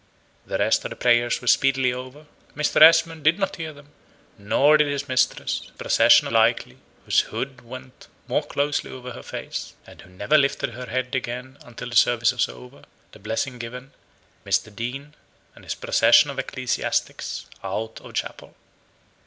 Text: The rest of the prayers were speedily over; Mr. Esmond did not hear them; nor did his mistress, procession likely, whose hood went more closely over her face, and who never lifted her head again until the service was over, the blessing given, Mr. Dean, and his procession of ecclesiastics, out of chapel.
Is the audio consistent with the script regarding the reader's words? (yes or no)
yes